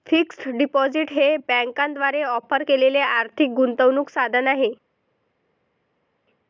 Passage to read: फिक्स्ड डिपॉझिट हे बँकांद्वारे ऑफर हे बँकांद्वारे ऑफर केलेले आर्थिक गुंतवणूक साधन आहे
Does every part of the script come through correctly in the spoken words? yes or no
no